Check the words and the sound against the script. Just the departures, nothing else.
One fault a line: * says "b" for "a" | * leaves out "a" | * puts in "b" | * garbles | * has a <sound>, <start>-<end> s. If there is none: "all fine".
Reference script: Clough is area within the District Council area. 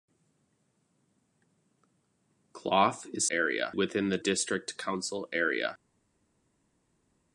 all fine